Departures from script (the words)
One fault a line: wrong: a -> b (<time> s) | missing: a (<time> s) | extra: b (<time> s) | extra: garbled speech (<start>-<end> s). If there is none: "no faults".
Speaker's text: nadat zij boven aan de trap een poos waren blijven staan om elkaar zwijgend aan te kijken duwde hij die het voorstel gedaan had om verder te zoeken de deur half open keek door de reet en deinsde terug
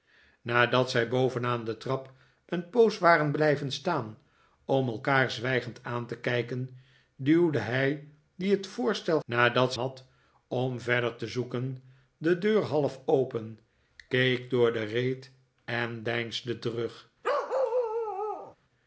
wrong: gedaan -> nadat (9.2 s)